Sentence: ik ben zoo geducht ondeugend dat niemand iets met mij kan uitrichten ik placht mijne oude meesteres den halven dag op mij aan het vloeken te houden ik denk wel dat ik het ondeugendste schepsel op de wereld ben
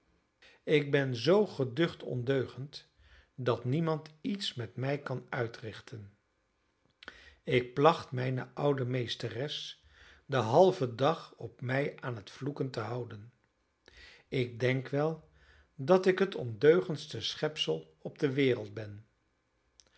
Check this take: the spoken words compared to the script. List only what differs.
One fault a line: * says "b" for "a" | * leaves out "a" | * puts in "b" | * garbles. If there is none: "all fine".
all fine